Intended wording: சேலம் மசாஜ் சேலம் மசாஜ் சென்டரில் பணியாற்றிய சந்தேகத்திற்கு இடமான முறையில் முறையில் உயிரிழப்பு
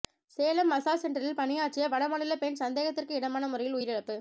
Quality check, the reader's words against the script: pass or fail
fail